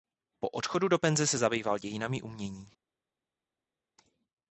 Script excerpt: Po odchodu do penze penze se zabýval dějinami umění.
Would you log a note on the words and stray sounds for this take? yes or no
yes